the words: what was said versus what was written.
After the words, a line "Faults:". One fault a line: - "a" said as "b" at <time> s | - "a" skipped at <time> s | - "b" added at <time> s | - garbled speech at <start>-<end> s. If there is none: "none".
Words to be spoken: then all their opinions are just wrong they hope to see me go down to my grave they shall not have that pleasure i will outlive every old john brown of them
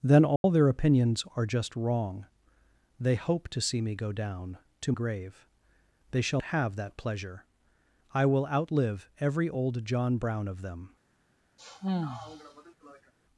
then all their opinions are just wrong they hope to see me go down to grave they shall have that pleasure i will outlive every old john brown of them
Faults:
- "my" skipped at 4.9 s
- "not" skipped at 6.4 s